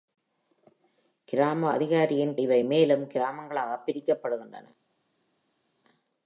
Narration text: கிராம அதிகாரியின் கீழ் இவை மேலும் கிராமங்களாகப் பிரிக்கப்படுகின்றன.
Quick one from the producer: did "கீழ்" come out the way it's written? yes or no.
no